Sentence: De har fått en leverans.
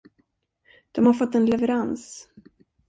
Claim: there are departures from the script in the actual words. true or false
false